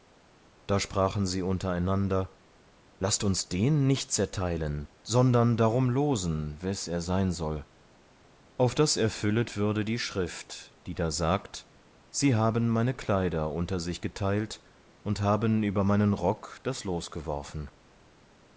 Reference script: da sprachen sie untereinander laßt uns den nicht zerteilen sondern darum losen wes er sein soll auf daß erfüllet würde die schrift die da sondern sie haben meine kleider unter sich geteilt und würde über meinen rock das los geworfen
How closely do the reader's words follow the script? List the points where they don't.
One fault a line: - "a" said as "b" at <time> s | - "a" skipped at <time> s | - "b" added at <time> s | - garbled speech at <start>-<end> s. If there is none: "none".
- "sondern" said as "sagt" at 11.1 s
- "würde" said as "haben" at 15.2 s